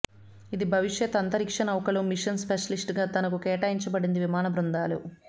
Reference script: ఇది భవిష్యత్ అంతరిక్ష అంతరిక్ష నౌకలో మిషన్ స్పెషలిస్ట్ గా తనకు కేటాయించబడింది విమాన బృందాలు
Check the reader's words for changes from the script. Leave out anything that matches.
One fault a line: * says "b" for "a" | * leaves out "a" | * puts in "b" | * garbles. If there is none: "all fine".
* leaves out "అంతరిక్ష"